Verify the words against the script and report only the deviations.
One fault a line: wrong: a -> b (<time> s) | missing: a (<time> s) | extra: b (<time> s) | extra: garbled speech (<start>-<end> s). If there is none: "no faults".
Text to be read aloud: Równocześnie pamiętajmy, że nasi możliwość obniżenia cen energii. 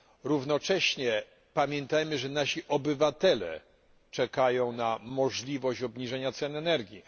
extra: obywatele czekają na (2.7 s)